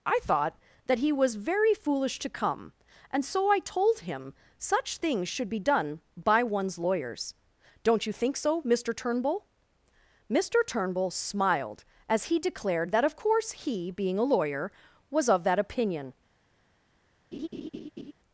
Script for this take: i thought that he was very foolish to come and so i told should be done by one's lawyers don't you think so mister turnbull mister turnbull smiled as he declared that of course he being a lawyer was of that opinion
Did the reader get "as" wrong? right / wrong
right